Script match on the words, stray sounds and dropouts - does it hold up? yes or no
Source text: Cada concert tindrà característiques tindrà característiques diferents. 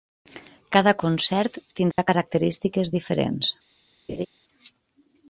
no